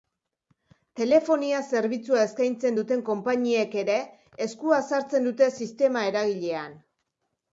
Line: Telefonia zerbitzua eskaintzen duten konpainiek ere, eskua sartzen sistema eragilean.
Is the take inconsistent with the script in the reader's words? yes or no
yes